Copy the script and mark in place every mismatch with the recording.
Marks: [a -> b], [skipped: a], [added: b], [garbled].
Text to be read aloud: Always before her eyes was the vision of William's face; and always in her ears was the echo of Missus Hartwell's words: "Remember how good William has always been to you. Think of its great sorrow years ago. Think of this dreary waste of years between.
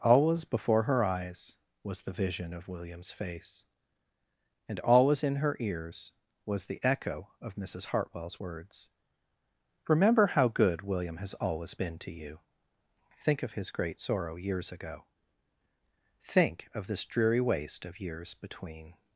Always before her eyes was the vision of William's face; and always in her ears was the echo of Missus Hartwell's words: "Remember how good William has always been to you. Think of [its -> his] great sorrow years ago. Think of this dreary waste of years between.